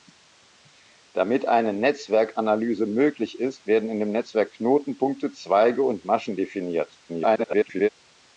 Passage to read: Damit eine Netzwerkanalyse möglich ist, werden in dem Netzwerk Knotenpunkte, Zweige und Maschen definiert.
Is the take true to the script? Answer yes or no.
no